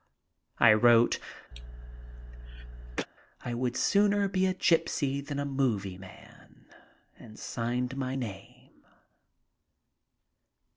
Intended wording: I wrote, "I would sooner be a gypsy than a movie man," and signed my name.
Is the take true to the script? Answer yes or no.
yes